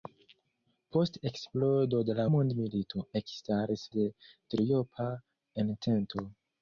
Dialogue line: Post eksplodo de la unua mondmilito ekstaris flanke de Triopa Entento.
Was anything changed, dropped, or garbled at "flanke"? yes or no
yes